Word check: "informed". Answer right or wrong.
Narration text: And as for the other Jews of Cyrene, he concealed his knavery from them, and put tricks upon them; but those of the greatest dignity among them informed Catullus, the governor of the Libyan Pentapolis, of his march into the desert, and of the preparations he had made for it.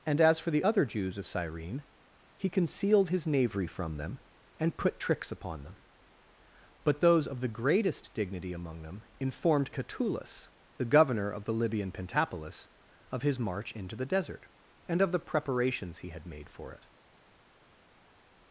right